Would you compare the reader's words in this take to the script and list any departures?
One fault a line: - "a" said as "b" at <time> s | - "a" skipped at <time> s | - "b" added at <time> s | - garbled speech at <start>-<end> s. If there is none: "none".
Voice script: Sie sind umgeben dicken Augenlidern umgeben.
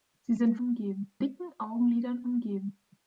none